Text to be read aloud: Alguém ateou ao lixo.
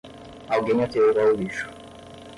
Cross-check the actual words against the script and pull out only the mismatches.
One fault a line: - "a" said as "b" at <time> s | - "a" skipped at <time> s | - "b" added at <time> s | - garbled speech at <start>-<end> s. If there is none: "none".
none